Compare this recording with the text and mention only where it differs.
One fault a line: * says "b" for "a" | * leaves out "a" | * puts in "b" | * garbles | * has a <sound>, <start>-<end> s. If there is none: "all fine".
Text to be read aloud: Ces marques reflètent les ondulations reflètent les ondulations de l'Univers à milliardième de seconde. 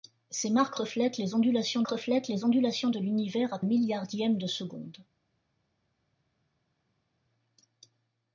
all fine